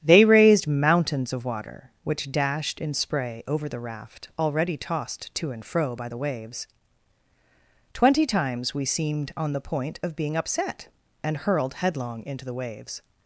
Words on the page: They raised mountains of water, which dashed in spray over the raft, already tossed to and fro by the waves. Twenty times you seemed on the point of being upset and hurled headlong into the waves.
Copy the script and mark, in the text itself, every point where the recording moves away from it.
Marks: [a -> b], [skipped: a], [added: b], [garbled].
They raised mountains of water, which dashed in spray over the raft, already tossed to and fro by the waves. Twenty times [you -> we] seemed on the point of being upset and hurled headlong into the waves.